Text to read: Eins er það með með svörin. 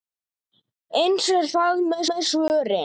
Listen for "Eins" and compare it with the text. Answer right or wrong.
right